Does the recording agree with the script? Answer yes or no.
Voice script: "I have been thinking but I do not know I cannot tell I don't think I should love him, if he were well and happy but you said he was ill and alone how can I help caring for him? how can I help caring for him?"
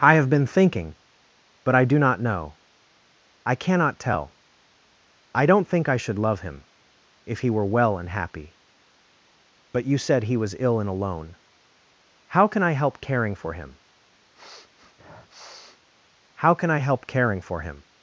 yes